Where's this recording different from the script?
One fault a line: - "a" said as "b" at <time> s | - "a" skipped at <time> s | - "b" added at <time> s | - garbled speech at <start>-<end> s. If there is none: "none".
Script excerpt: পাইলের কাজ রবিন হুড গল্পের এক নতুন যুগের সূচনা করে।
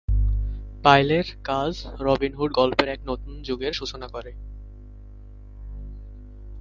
none